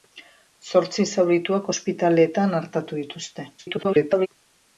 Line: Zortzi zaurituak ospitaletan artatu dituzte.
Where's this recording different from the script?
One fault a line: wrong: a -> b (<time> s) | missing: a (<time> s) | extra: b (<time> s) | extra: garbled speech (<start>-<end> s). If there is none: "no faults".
extra: garbled speech (3.6-4.3 s)